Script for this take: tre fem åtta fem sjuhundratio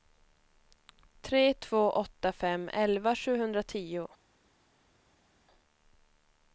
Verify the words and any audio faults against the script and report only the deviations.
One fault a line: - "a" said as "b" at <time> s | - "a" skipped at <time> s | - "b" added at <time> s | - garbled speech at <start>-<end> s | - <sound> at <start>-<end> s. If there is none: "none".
- "fem" said as "två" at 1.5 s
- "elva" added at 2.7 s